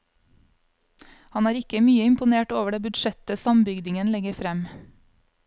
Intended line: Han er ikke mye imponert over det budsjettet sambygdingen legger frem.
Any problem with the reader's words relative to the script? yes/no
no